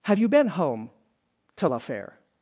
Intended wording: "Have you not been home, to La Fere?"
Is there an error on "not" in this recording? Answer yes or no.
yes